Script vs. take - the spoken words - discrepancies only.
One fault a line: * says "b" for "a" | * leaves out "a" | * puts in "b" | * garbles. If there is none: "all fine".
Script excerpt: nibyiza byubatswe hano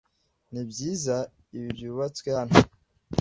* puts in "ibi"